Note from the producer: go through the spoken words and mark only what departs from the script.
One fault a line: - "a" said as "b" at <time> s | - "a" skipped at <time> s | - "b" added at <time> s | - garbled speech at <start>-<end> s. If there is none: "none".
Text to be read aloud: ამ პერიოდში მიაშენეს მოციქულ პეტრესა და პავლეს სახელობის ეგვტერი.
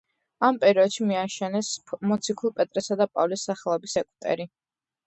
none